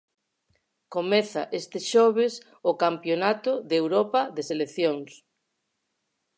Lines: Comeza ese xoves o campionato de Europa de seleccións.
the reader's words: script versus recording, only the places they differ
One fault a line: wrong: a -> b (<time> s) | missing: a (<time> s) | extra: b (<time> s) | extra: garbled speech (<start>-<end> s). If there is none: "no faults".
wrong: ese -> este (1.6 s)